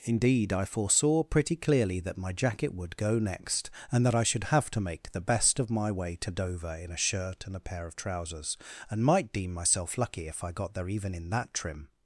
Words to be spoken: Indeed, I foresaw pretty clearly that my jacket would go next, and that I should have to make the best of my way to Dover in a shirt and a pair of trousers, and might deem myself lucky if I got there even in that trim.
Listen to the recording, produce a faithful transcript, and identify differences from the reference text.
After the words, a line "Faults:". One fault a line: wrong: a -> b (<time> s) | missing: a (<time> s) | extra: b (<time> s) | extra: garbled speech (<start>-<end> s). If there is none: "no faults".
Indeed, I foresaw pretty clearly that my jacket would go next, and that I should have to make the best of my way to Dover in a shirt and a pair of trousers, and might deem myself lucky if I got there even in that trim.
Faults:
no faults